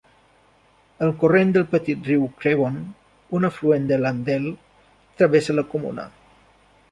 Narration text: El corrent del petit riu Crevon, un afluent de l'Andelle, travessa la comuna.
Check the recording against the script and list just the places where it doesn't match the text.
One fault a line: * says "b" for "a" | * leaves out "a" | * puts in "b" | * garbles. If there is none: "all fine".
all fine